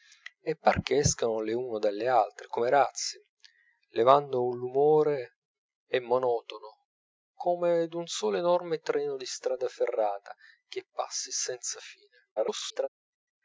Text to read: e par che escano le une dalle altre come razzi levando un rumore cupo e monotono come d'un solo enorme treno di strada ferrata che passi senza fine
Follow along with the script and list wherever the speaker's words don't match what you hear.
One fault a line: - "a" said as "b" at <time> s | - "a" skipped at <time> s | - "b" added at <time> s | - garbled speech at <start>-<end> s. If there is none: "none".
- "cupo" skipped at 5.4 s
- garbled speech at 12.4-12.9 s